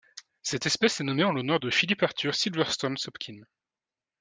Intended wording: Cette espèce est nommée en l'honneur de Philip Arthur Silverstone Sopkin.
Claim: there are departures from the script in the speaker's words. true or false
false